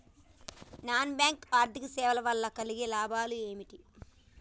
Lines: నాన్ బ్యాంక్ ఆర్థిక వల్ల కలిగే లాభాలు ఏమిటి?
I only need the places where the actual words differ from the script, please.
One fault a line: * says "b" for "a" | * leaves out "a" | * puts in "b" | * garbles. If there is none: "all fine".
* puts in "సేవల"